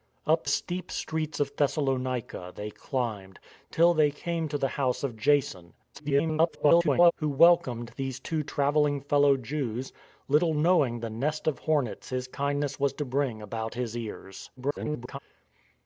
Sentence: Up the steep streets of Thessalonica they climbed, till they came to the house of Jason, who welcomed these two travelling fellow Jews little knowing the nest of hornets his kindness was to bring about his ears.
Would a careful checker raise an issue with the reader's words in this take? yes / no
yes